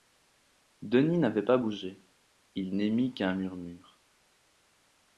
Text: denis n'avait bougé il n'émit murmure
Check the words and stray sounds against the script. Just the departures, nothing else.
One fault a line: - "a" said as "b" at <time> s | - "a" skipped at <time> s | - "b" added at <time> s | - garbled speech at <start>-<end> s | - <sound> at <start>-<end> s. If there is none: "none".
- "pas" added at 1.4 s
- "qu'un" added at 3.1 s